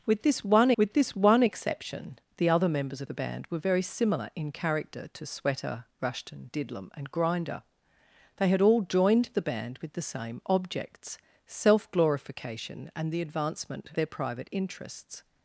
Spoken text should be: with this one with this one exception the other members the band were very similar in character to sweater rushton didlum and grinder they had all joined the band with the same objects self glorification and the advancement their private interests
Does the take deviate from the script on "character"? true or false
false